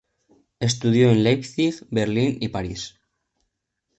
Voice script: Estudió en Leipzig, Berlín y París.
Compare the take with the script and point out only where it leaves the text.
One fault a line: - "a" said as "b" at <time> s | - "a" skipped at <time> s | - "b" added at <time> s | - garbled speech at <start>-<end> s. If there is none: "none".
none